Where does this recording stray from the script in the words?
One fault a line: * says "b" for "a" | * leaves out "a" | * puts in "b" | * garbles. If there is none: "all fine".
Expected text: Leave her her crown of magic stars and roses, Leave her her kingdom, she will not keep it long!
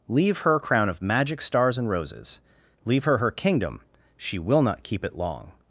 * leaves out "her"